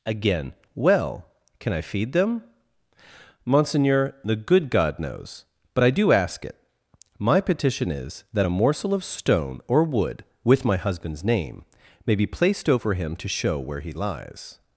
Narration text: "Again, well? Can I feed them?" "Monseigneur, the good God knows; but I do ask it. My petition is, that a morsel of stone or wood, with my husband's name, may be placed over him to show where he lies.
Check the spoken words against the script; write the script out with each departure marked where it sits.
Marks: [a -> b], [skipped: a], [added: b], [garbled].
"Again, well? Can I feed them?" "Monseigneur, the good God knows; but I do ask it. My petition is, that a morsel of stone or wood, with my husband's name, may be placed over him to show where he lies.